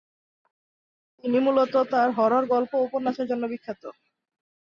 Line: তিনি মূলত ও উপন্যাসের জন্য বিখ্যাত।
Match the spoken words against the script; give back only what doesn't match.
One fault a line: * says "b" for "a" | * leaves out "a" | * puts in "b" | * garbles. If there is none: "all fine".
* puts in "তার হরর গল্প"